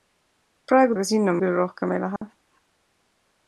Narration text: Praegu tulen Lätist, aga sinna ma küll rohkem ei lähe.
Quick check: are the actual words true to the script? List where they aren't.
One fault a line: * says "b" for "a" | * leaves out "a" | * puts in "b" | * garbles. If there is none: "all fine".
* leaves out "tulen Lätist"
* leaves out "ma"